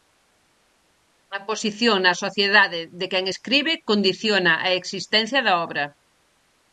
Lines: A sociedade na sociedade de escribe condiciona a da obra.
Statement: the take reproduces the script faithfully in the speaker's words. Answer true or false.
false